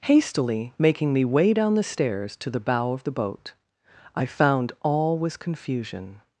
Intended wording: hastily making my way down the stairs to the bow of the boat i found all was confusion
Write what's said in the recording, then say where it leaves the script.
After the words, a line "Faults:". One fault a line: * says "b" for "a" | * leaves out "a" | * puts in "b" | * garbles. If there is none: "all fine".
hastily making me way down the stairs to the bow of the boat i found all was confusion
Faults:
* says "me" for "my"